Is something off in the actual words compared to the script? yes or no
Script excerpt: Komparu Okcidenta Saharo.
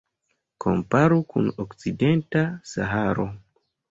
yes